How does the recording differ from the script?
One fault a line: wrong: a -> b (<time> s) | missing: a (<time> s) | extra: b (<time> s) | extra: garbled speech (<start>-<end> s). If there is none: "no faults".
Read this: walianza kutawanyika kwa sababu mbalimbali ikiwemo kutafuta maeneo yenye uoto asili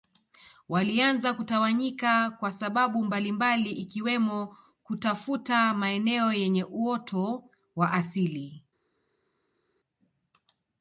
extra: wa (7.8 s)